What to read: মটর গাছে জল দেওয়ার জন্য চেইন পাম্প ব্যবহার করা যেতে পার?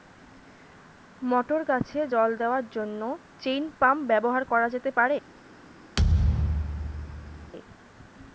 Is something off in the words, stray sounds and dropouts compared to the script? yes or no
yes